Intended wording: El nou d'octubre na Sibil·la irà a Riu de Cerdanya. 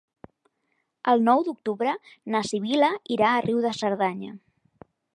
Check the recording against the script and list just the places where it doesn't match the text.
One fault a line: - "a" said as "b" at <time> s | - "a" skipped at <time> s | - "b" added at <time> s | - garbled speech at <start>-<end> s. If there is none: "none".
none